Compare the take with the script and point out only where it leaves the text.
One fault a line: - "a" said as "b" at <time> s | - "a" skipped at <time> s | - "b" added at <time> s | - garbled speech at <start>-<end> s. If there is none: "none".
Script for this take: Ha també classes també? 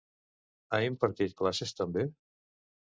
- "també" said as "impartit" at 0.9 s